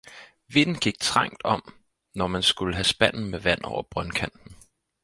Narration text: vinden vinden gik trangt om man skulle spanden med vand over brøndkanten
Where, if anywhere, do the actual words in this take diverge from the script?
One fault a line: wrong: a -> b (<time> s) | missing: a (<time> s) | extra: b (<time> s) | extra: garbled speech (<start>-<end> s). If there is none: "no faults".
missing: vinden (0.8 s)
extra: når (2.1 s)
extra: have (2.8 s)